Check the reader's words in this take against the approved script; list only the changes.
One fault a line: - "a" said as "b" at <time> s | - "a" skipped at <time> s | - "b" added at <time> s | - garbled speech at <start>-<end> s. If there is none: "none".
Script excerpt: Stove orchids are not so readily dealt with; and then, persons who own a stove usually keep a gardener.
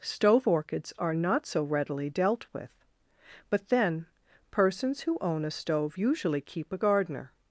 - "and" said as "but" at 3.5 s